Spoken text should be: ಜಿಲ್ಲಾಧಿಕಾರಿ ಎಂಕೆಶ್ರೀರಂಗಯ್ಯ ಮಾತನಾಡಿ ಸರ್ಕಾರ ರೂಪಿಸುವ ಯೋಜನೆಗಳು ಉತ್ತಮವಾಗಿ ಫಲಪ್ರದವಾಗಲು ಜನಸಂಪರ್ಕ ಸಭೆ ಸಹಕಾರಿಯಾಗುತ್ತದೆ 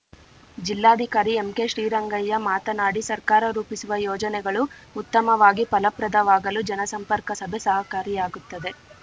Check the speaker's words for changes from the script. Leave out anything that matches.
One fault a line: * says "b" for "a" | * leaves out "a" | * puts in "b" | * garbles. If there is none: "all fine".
all fine